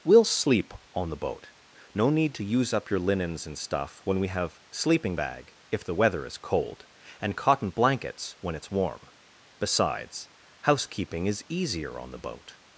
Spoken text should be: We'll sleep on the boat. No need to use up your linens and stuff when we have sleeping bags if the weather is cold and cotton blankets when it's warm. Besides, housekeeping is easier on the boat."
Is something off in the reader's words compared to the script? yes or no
yes